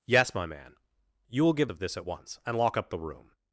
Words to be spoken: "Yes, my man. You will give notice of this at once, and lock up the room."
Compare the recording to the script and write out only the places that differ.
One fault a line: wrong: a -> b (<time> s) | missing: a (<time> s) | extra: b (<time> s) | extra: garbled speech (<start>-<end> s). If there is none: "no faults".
missing: notice (1.7 s)